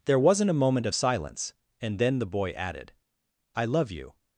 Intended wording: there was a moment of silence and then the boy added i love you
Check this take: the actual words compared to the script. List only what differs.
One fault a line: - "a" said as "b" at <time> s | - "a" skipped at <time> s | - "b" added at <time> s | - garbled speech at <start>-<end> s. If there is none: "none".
- "was" said as "wasn't" at 0.2 s